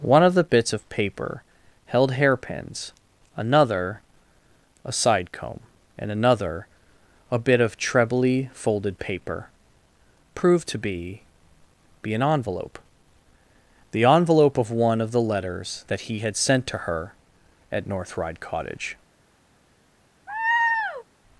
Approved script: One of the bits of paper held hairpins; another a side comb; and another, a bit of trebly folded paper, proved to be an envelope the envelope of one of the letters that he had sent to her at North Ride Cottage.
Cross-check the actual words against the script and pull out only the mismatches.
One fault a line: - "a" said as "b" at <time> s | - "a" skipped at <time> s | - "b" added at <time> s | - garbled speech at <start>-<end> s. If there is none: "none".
- "be" added at 12.0 s